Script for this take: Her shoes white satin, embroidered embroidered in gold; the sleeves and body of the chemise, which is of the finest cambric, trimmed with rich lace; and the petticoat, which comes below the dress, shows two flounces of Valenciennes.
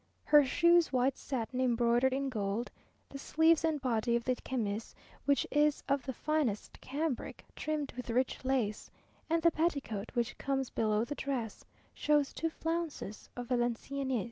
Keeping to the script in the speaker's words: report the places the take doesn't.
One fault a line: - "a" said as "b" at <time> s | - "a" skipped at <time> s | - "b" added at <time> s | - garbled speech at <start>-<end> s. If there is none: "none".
- "embroidered" skipped at 2.1 s